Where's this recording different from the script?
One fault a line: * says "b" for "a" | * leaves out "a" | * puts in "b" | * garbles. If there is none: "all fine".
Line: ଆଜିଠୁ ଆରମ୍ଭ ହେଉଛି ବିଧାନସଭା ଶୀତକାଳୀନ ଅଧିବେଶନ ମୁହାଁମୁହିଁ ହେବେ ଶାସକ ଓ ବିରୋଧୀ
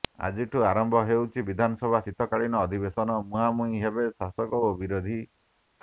all fine